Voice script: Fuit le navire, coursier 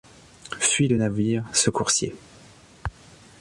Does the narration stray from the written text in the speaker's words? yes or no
yes